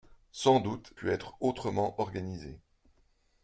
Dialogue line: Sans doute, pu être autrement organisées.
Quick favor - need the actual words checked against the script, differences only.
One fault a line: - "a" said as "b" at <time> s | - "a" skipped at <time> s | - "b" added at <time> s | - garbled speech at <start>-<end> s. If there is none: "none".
none